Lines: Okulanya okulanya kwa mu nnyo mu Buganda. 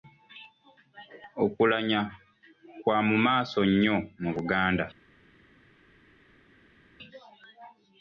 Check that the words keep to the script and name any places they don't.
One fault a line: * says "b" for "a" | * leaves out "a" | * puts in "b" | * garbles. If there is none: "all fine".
* leaves out "okulanya"
* puts in "maaso"